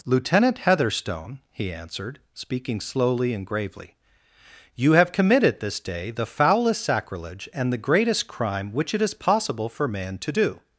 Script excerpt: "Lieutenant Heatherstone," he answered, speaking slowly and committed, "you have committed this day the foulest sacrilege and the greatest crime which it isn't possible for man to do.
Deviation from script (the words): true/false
true